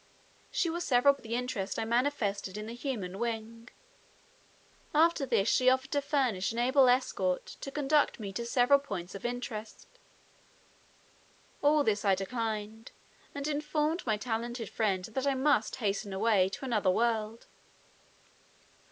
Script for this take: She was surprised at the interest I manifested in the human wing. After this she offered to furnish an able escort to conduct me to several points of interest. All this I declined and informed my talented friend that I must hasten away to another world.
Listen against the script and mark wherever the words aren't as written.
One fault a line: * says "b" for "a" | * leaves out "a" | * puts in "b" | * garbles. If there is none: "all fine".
* says "several" for "surprised"